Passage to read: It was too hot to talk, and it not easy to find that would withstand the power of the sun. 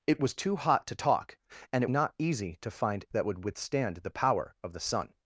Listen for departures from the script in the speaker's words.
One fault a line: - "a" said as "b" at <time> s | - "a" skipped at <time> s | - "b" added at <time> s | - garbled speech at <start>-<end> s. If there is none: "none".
none